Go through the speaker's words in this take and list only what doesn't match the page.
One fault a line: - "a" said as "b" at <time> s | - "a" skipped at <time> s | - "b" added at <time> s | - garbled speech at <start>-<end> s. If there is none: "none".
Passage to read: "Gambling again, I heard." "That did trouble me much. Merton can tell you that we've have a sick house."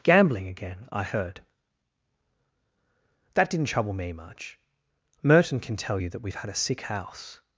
- "did" said as "didn't" at 3.5 s
- "have" said as "had" at 6.3 s